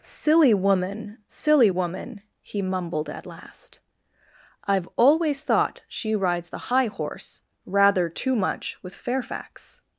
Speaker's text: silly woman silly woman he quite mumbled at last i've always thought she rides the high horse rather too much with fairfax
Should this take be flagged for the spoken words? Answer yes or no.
yes